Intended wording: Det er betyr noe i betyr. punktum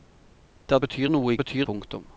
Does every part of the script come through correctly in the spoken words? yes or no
yes